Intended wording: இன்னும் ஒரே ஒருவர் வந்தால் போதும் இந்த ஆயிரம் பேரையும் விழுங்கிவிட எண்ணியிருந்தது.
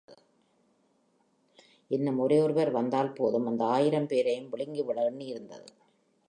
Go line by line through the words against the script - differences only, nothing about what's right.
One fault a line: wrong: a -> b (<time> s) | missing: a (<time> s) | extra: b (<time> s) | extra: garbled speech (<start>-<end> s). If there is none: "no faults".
wrong: இந்த -> அந்த (3.5 s)